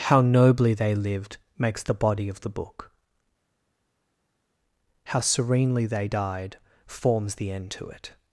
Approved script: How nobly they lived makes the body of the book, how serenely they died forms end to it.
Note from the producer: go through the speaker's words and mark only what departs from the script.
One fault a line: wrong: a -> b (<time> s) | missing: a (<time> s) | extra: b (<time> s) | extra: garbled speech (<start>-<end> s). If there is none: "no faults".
extra: the (7.4 s)